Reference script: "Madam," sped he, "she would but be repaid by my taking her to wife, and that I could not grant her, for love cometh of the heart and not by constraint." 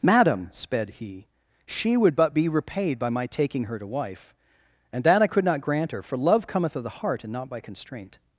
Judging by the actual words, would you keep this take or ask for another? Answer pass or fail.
pass